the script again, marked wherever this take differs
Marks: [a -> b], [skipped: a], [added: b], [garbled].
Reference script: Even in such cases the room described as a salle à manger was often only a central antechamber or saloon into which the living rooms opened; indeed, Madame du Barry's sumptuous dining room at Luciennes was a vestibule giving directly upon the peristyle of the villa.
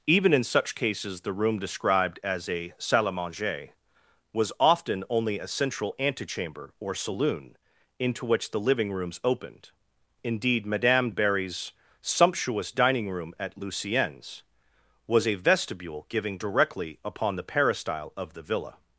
Even in such cases the room described as a salle à manger was often only a central antechamber or saloon into which the living rooms opened; indeed, Madame [skipped: du] Barry's sumptuous dining room at Luciennes was a vestibule giving directly upon the peristyle of the villa.